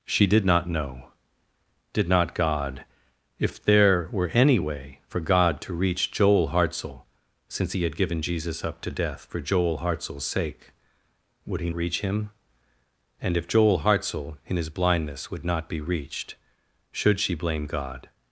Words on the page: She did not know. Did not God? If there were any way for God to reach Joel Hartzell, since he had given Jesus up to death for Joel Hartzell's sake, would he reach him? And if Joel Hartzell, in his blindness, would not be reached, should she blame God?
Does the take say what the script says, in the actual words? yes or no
yes